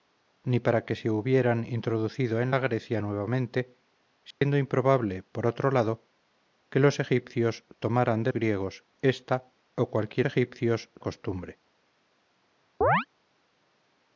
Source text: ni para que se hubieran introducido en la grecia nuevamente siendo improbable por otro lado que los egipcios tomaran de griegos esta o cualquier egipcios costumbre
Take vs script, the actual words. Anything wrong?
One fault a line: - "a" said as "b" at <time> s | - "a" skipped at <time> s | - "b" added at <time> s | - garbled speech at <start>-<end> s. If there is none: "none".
none